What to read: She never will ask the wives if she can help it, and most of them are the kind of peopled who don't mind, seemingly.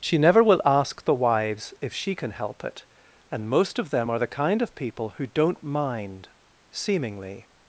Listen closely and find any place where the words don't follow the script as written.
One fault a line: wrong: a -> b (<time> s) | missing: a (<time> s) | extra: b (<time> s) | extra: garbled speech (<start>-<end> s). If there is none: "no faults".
wrong: peopled -> people (4.7 s)